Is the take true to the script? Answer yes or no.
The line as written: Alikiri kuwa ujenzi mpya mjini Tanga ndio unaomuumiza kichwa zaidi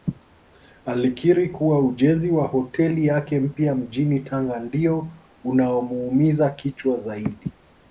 no